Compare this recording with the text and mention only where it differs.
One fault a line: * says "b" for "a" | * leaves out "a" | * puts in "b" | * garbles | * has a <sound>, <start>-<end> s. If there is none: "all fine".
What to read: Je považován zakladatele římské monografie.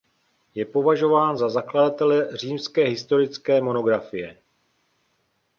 * puts in "za"
* puts in "historické"